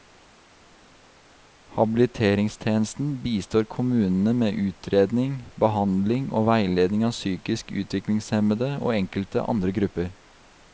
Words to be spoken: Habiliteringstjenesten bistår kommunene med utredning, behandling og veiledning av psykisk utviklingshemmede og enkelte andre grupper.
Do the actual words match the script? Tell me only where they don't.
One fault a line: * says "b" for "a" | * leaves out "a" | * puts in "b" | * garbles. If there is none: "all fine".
all fine